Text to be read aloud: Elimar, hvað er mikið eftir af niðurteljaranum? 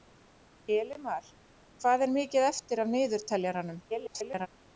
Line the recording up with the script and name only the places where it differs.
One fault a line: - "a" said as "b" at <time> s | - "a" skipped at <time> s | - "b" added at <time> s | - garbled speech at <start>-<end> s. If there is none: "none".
- garbled speech at 3.9-4.5 s